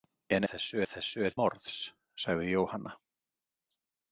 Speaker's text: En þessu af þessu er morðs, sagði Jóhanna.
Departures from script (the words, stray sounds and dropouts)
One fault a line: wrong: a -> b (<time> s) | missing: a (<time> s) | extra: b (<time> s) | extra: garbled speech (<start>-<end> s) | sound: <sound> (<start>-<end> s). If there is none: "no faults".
no faults